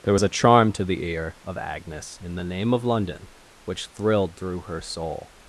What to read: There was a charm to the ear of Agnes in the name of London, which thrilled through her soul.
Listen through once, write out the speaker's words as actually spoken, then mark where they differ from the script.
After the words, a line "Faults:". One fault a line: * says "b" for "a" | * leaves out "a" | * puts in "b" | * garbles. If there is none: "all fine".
There was a charm to the ear of Agnes in the name of London, which thrilled through her soul.
Faults:
all fine